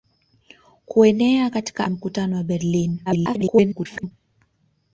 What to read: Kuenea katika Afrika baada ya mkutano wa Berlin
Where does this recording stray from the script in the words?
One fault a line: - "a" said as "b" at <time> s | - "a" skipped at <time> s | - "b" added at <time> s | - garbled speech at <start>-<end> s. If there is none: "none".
- "Afrika baada" skipped at 1.9 s
- garbled speech at 3.1-4.1 s